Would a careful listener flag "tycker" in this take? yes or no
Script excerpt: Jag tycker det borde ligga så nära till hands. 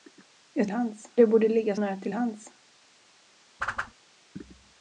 yes